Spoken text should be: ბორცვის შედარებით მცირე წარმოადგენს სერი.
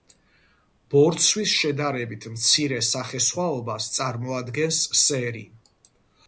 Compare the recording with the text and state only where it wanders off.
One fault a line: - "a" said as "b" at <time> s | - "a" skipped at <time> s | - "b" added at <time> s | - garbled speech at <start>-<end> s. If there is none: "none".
- "სახესხვაობას" added at 2.9 s